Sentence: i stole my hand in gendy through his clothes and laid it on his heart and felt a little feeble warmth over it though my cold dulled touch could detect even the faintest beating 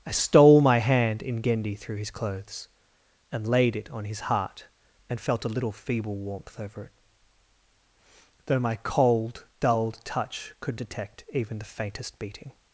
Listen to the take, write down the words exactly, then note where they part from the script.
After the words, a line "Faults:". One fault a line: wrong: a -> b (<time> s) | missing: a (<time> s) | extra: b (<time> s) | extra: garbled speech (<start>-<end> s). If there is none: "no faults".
i stole my hand in gendy through his clothes and laid it on his heart and felt a little feeble warmth over it though my cold dulled touch could detect even the faintest beating
Faults:
no faults